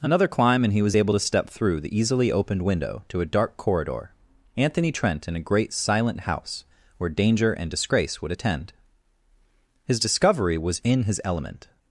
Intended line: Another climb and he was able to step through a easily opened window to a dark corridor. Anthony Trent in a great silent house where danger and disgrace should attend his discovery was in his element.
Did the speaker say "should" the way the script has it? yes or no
no